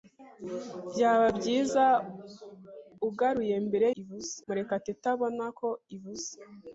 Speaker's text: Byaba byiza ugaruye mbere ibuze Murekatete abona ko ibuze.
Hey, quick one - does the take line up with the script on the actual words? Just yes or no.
yes